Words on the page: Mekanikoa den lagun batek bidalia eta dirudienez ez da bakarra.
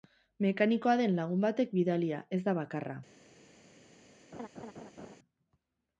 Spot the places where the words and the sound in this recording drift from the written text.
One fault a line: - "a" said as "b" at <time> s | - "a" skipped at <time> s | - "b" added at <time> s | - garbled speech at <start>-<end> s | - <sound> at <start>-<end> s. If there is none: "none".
- "eta dirudienez" skipped at 2.2 s
- laugh at 4.3-5.2 s